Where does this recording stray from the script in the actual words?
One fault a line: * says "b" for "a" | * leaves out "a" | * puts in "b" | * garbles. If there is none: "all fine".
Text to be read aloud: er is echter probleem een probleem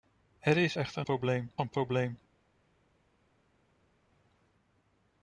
all fine